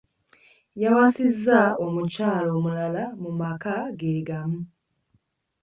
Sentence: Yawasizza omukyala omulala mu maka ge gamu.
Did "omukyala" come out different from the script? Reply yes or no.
no